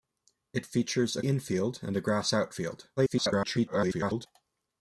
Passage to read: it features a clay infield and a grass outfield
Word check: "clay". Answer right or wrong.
wrong